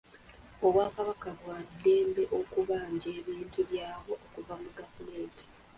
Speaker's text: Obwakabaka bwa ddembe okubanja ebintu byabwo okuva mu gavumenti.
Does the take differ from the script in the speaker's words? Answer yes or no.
no